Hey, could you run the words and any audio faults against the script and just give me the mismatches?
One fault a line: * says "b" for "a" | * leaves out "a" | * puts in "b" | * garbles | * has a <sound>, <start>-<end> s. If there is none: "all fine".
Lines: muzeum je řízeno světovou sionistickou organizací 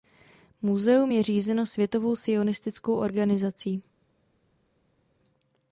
all fine